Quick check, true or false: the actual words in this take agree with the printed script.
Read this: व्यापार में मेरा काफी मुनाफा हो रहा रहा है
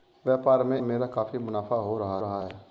true